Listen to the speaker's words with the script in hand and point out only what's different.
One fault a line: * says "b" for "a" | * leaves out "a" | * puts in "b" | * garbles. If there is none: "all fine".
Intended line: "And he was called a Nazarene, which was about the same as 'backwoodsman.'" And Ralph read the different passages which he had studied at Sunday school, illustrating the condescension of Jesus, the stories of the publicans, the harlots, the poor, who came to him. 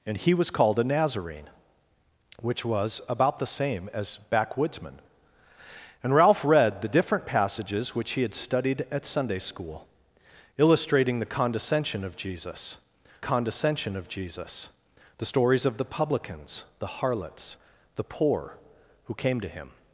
* puts in "condescension of Jesus"